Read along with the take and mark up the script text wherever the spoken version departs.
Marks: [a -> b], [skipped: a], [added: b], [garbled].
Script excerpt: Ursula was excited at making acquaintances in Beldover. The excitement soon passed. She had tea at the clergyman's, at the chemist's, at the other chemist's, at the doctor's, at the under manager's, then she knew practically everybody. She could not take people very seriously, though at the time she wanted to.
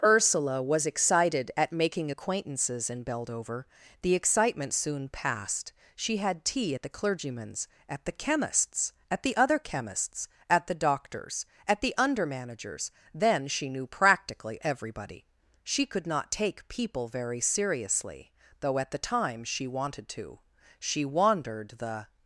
Ursula was excited at making acquaintances in Beldover. The excitement soon passed. She had tea at the clergyman's, at the chemist's, at the other chemist's, at the doctor's, at the under manager's, then she knew practically everybody. She could not take people very seriously, though at the time she wanted to. [added: She wandered the]